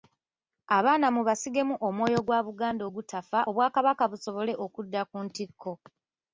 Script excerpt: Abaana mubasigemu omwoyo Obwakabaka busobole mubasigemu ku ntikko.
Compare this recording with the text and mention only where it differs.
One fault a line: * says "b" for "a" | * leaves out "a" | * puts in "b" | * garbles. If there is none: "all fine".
* puts in "gwa Buganda ogutafa"
* says "okudda" for "mubasigemu"